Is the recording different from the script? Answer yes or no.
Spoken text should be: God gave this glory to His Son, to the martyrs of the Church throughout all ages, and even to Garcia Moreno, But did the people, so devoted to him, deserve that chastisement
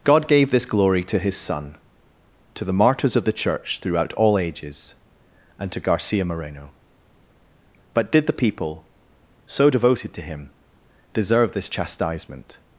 yes